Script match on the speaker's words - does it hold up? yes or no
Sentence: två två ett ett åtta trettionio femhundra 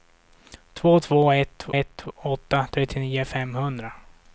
yes